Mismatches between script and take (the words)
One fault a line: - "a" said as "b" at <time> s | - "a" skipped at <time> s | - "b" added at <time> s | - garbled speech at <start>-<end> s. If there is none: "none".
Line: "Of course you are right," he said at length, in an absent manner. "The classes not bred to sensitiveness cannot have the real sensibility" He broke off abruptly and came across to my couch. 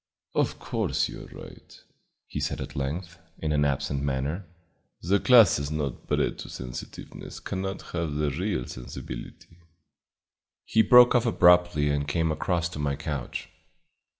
none